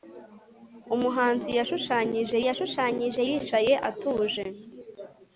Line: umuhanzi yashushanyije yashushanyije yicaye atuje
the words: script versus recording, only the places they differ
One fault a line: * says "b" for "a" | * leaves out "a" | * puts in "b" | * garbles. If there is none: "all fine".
all fine